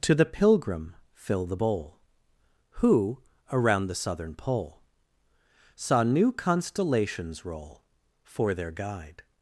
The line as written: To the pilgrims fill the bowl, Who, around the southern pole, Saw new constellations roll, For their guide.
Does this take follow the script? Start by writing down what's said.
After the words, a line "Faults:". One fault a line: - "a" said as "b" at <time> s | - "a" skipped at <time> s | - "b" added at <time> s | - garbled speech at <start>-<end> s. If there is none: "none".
To the pilgrim fill the bowl, Who, around the southern pole, Saw new constellations roll, For their guide.
Faults:
- "pilgrims" said as "pilgrim" at 0.2 s